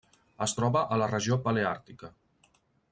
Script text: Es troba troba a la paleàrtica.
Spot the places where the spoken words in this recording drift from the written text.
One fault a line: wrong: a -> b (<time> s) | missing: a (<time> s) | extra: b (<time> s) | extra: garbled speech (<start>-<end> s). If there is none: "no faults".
missing: troba (0.8 s)
extra: regió (1.1 s)